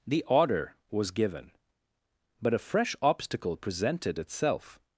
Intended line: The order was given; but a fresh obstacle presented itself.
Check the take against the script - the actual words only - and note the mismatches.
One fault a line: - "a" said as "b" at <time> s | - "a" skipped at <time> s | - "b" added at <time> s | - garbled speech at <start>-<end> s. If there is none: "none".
none